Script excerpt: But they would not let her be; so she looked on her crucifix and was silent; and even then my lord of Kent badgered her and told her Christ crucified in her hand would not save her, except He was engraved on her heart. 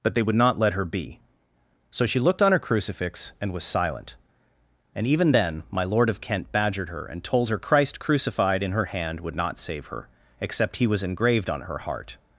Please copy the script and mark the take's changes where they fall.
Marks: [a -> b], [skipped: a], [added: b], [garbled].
But they would not let her be; so she looked on her crucifix and was silent; and even then my lord of Kent badgered her and told her Christ crucified in her hand would not save her, except He was engraved on her heart.